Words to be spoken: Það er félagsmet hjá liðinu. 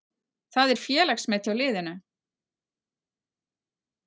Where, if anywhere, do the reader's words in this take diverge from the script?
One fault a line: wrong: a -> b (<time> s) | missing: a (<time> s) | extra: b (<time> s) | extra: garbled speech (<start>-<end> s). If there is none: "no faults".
no faults